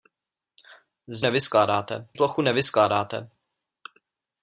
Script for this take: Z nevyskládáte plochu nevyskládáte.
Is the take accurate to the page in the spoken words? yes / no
yes